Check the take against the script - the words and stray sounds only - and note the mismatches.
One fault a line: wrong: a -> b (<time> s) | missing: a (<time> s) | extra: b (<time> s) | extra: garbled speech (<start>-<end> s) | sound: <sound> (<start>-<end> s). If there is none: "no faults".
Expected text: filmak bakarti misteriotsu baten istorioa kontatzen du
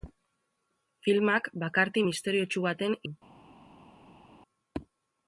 missing: istorioa kontatzen (2.9 s)